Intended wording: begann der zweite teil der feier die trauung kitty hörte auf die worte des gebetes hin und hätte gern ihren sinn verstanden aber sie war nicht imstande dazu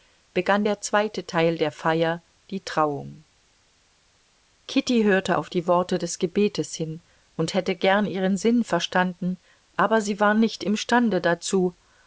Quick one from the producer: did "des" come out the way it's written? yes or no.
yes